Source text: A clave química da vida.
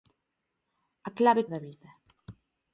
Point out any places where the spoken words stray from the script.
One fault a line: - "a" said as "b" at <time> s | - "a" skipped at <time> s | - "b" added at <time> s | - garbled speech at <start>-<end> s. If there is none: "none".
- "química" skipped at 1.4 s